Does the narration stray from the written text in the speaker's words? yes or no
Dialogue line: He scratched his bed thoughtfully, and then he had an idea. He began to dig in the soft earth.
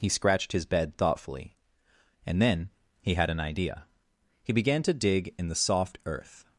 no